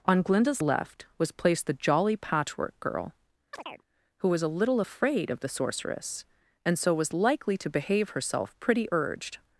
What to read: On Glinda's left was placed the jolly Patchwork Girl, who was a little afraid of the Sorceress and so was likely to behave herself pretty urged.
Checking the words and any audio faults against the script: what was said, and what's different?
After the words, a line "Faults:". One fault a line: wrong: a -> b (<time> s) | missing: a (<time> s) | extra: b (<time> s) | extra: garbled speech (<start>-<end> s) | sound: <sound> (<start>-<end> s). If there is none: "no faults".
On Glinda's left was placed the jolly Patchwork Girl, who was a little afraid of the Sorceress and so was likely to behave herself pretty urged.
Faults:
sound: chirp (3.5-3.8 s)